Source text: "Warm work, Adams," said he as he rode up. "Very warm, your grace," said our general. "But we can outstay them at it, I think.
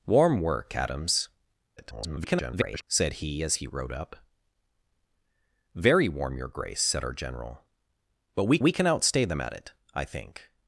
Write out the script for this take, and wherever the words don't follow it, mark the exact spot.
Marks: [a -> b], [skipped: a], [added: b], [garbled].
"Warm work, Adams," [garbled] said he as he rode up. "Very warm, your grace," said our general. "But we [added: we] can outstay them at it, I think.